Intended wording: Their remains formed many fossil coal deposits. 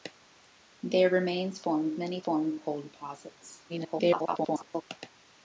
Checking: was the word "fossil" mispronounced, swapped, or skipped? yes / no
yes